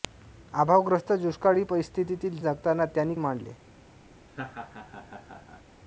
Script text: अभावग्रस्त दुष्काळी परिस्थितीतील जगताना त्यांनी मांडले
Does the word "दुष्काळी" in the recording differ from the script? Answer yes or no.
no